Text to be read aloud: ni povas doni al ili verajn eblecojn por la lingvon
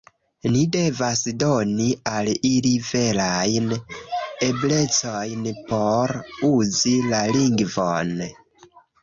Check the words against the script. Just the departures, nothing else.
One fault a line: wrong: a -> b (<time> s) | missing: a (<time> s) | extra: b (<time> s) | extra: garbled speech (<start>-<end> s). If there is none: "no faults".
wrong: povas -> devas (0.8 s)
extra: uzi (6.5 s)